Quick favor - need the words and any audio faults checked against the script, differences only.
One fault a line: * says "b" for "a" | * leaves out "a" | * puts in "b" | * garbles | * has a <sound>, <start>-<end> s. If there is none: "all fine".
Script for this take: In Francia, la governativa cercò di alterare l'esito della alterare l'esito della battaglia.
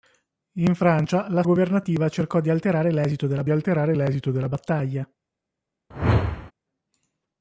* has a whoosh, 5.9-6.5 s